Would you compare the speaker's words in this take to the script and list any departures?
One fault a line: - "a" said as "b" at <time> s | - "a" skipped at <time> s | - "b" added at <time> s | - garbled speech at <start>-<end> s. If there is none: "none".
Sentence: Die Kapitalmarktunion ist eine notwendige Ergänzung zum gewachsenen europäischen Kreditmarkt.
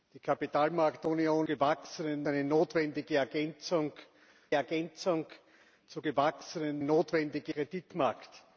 - "ist" said as "gewachsenen" at 1.4 s
- "Ergänzung" added at 4.5 s
- "europäischen" said as "notwendige" at 6.8 s